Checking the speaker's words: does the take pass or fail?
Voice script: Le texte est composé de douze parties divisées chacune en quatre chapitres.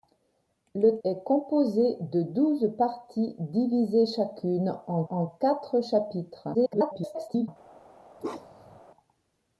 fail